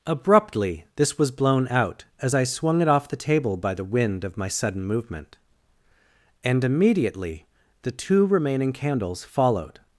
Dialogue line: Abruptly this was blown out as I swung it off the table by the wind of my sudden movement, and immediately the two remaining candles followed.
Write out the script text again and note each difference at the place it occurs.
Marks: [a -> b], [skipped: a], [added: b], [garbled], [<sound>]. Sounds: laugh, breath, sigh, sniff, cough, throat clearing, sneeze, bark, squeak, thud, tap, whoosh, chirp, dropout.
Abruptly this was blown out as I swung it off the table by the wind of my sudden movement, and immediately the two remaining candles followed.